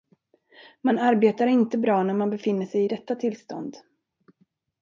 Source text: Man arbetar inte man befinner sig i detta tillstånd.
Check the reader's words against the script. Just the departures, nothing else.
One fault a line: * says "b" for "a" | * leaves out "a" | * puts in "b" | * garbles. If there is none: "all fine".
* puts in "bra när"